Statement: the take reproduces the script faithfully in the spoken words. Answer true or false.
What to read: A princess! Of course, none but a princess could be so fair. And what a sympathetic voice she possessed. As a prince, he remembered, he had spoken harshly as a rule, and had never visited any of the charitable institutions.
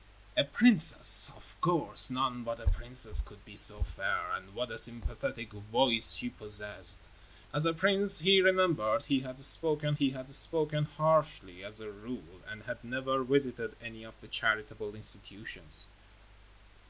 false